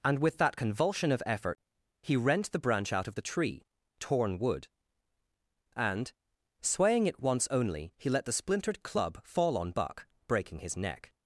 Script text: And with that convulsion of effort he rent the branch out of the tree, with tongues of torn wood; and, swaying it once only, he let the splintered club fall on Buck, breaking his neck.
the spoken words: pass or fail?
fail